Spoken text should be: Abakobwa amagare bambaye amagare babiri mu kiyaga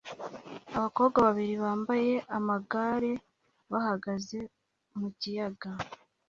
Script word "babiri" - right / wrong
wrong